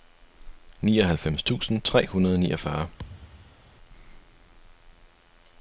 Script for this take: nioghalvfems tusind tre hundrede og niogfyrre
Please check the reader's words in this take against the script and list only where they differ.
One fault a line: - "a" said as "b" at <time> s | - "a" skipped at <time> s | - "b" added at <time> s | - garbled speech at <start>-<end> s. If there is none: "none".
none